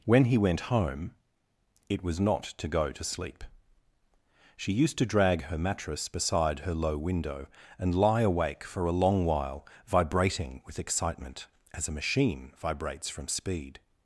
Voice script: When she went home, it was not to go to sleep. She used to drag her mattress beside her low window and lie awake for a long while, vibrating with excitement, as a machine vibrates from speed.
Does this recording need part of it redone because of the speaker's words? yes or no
yes